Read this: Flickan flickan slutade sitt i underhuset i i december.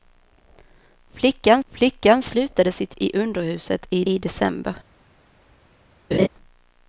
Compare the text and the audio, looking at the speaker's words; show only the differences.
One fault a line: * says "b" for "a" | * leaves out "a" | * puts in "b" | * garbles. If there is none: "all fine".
all fine